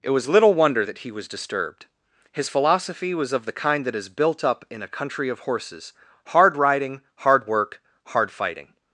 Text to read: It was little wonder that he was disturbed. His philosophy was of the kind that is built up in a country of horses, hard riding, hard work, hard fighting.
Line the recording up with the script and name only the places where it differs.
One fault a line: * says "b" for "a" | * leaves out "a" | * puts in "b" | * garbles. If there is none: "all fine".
all fine